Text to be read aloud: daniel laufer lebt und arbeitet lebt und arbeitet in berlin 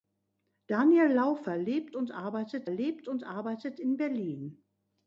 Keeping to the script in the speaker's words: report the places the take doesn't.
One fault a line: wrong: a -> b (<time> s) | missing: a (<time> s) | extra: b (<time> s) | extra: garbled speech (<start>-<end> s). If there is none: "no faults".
no faults